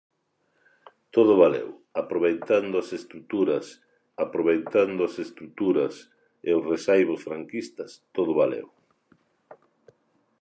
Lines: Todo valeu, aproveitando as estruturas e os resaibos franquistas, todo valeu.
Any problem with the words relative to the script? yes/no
yes